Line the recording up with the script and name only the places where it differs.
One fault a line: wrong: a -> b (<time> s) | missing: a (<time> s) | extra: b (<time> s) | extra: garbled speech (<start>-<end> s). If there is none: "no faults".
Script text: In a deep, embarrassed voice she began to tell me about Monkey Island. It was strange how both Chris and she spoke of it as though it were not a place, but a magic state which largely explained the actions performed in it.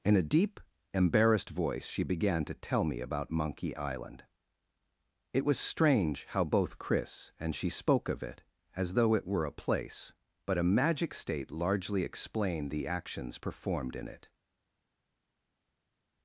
missing: not (9.4 s)
missing: which (11.5 s)